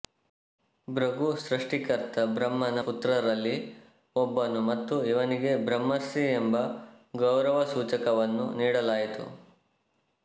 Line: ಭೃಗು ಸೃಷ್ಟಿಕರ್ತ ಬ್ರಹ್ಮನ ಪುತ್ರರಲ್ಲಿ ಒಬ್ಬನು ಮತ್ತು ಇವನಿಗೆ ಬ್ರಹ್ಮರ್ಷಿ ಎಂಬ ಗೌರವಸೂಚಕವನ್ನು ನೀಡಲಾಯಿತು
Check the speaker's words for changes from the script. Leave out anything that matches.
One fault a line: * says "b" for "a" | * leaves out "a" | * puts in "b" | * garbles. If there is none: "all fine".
all fine